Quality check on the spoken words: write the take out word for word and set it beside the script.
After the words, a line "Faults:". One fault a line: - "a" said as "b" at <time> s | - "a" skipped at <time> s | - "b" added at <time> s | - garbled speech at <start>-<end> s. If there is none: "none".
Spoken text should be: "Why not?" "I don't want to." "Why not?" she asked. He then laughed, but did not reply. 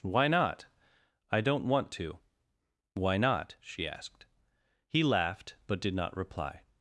"Why not?" "I don't want to." "Why not?" she asked. He laughed, but did not reply.
Faults:
- "then" skipped at 5.0 s